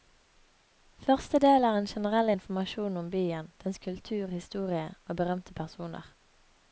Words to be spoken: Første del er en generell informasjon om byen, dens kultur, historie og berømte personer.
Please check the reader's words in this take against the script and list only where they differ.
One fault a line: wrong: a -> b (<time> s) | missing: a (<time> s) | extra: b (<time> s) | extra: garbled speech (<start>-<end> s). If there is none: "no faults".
no faults